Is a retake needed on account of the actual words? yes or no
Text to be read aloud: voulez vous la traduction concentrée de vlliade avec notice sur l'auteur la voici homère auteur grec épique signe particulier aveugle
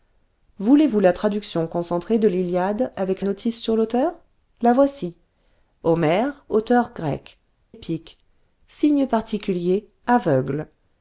no